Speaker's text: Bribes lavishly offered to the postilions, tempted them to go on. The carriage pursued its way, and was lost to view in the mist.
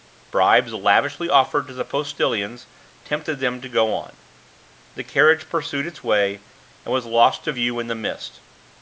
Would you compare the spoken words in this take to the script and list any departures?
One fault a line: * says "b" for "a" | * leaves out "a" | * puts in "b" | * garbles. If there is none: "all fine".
all fine